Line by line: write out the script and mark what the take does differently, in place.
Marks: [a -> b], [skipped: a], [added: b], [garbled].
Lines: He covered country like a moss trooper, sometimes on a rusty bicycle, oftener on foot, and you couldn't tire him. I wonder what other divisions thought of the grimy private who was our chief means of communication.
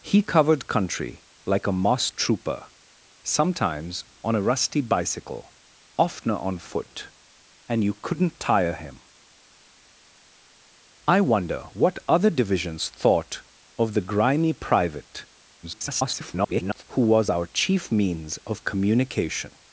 He covered country like a moss trooper, sometimes on a rusty bicycle, oftener on foot, and you couldn't tire him. I wonder what other divisions thought of the grimy private [garbled] who was our chief means of communication.